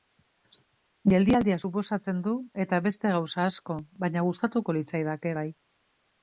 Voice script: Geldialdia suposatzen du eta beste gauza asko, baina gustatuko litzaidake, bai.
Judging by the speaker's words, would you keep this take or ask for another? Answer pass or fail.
pass